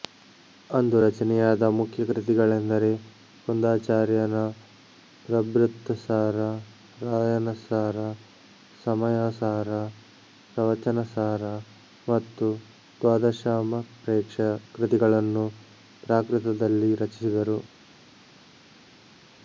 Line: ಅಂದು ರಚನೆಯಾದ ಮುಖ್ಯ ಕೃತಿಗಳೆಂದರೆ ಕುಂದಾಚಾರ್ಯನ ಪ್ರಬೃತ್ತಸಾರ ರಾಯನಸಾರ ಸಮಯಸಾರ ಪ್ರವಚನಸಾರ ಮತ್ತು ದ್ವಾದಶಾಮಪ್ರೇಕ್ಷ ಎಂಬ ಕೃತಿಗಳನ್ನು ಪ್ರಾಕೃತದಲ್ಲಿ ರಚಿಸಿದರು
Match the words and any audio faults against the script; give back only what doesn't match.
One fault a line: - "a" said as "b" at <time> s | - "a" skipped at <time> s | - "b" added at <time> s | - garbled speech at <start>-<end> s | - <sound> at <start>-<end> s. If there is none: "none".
- "ಎಂಬ" skipped at 14.4 s